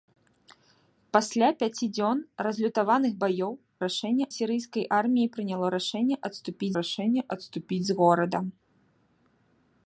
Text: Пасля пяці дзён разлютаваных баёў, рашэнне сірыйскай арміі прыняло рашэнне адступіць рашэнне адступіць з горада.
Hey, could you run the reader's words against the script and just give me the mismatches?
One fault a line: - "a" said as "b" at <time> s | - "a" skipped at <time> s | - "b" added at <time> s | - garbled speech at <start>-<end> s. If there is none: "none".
none